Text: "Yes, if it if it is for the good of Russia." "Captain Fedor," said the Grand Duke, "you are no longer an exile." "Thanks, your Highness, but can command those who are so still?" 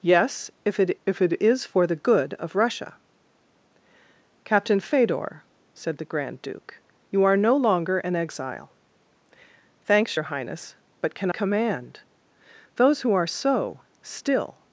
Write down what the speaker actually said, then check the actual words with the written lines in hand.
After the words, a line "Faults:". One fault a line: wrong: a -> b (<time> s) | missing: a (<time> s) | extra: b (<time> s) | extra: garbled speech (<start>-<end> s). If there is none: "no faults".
"Yes, if it if it is for the good of Russia." "Captain Fedor," said the Grand Duke, "you are no longer an exile." "Thanks, your Highness, but can command those who are so still?"
Faults:
no faults